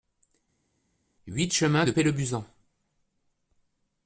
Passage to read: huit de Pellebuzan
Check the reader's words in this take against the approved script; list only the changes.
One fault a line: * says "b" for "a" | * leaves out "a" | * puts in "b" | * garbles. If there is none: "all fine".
* puts in "chemin"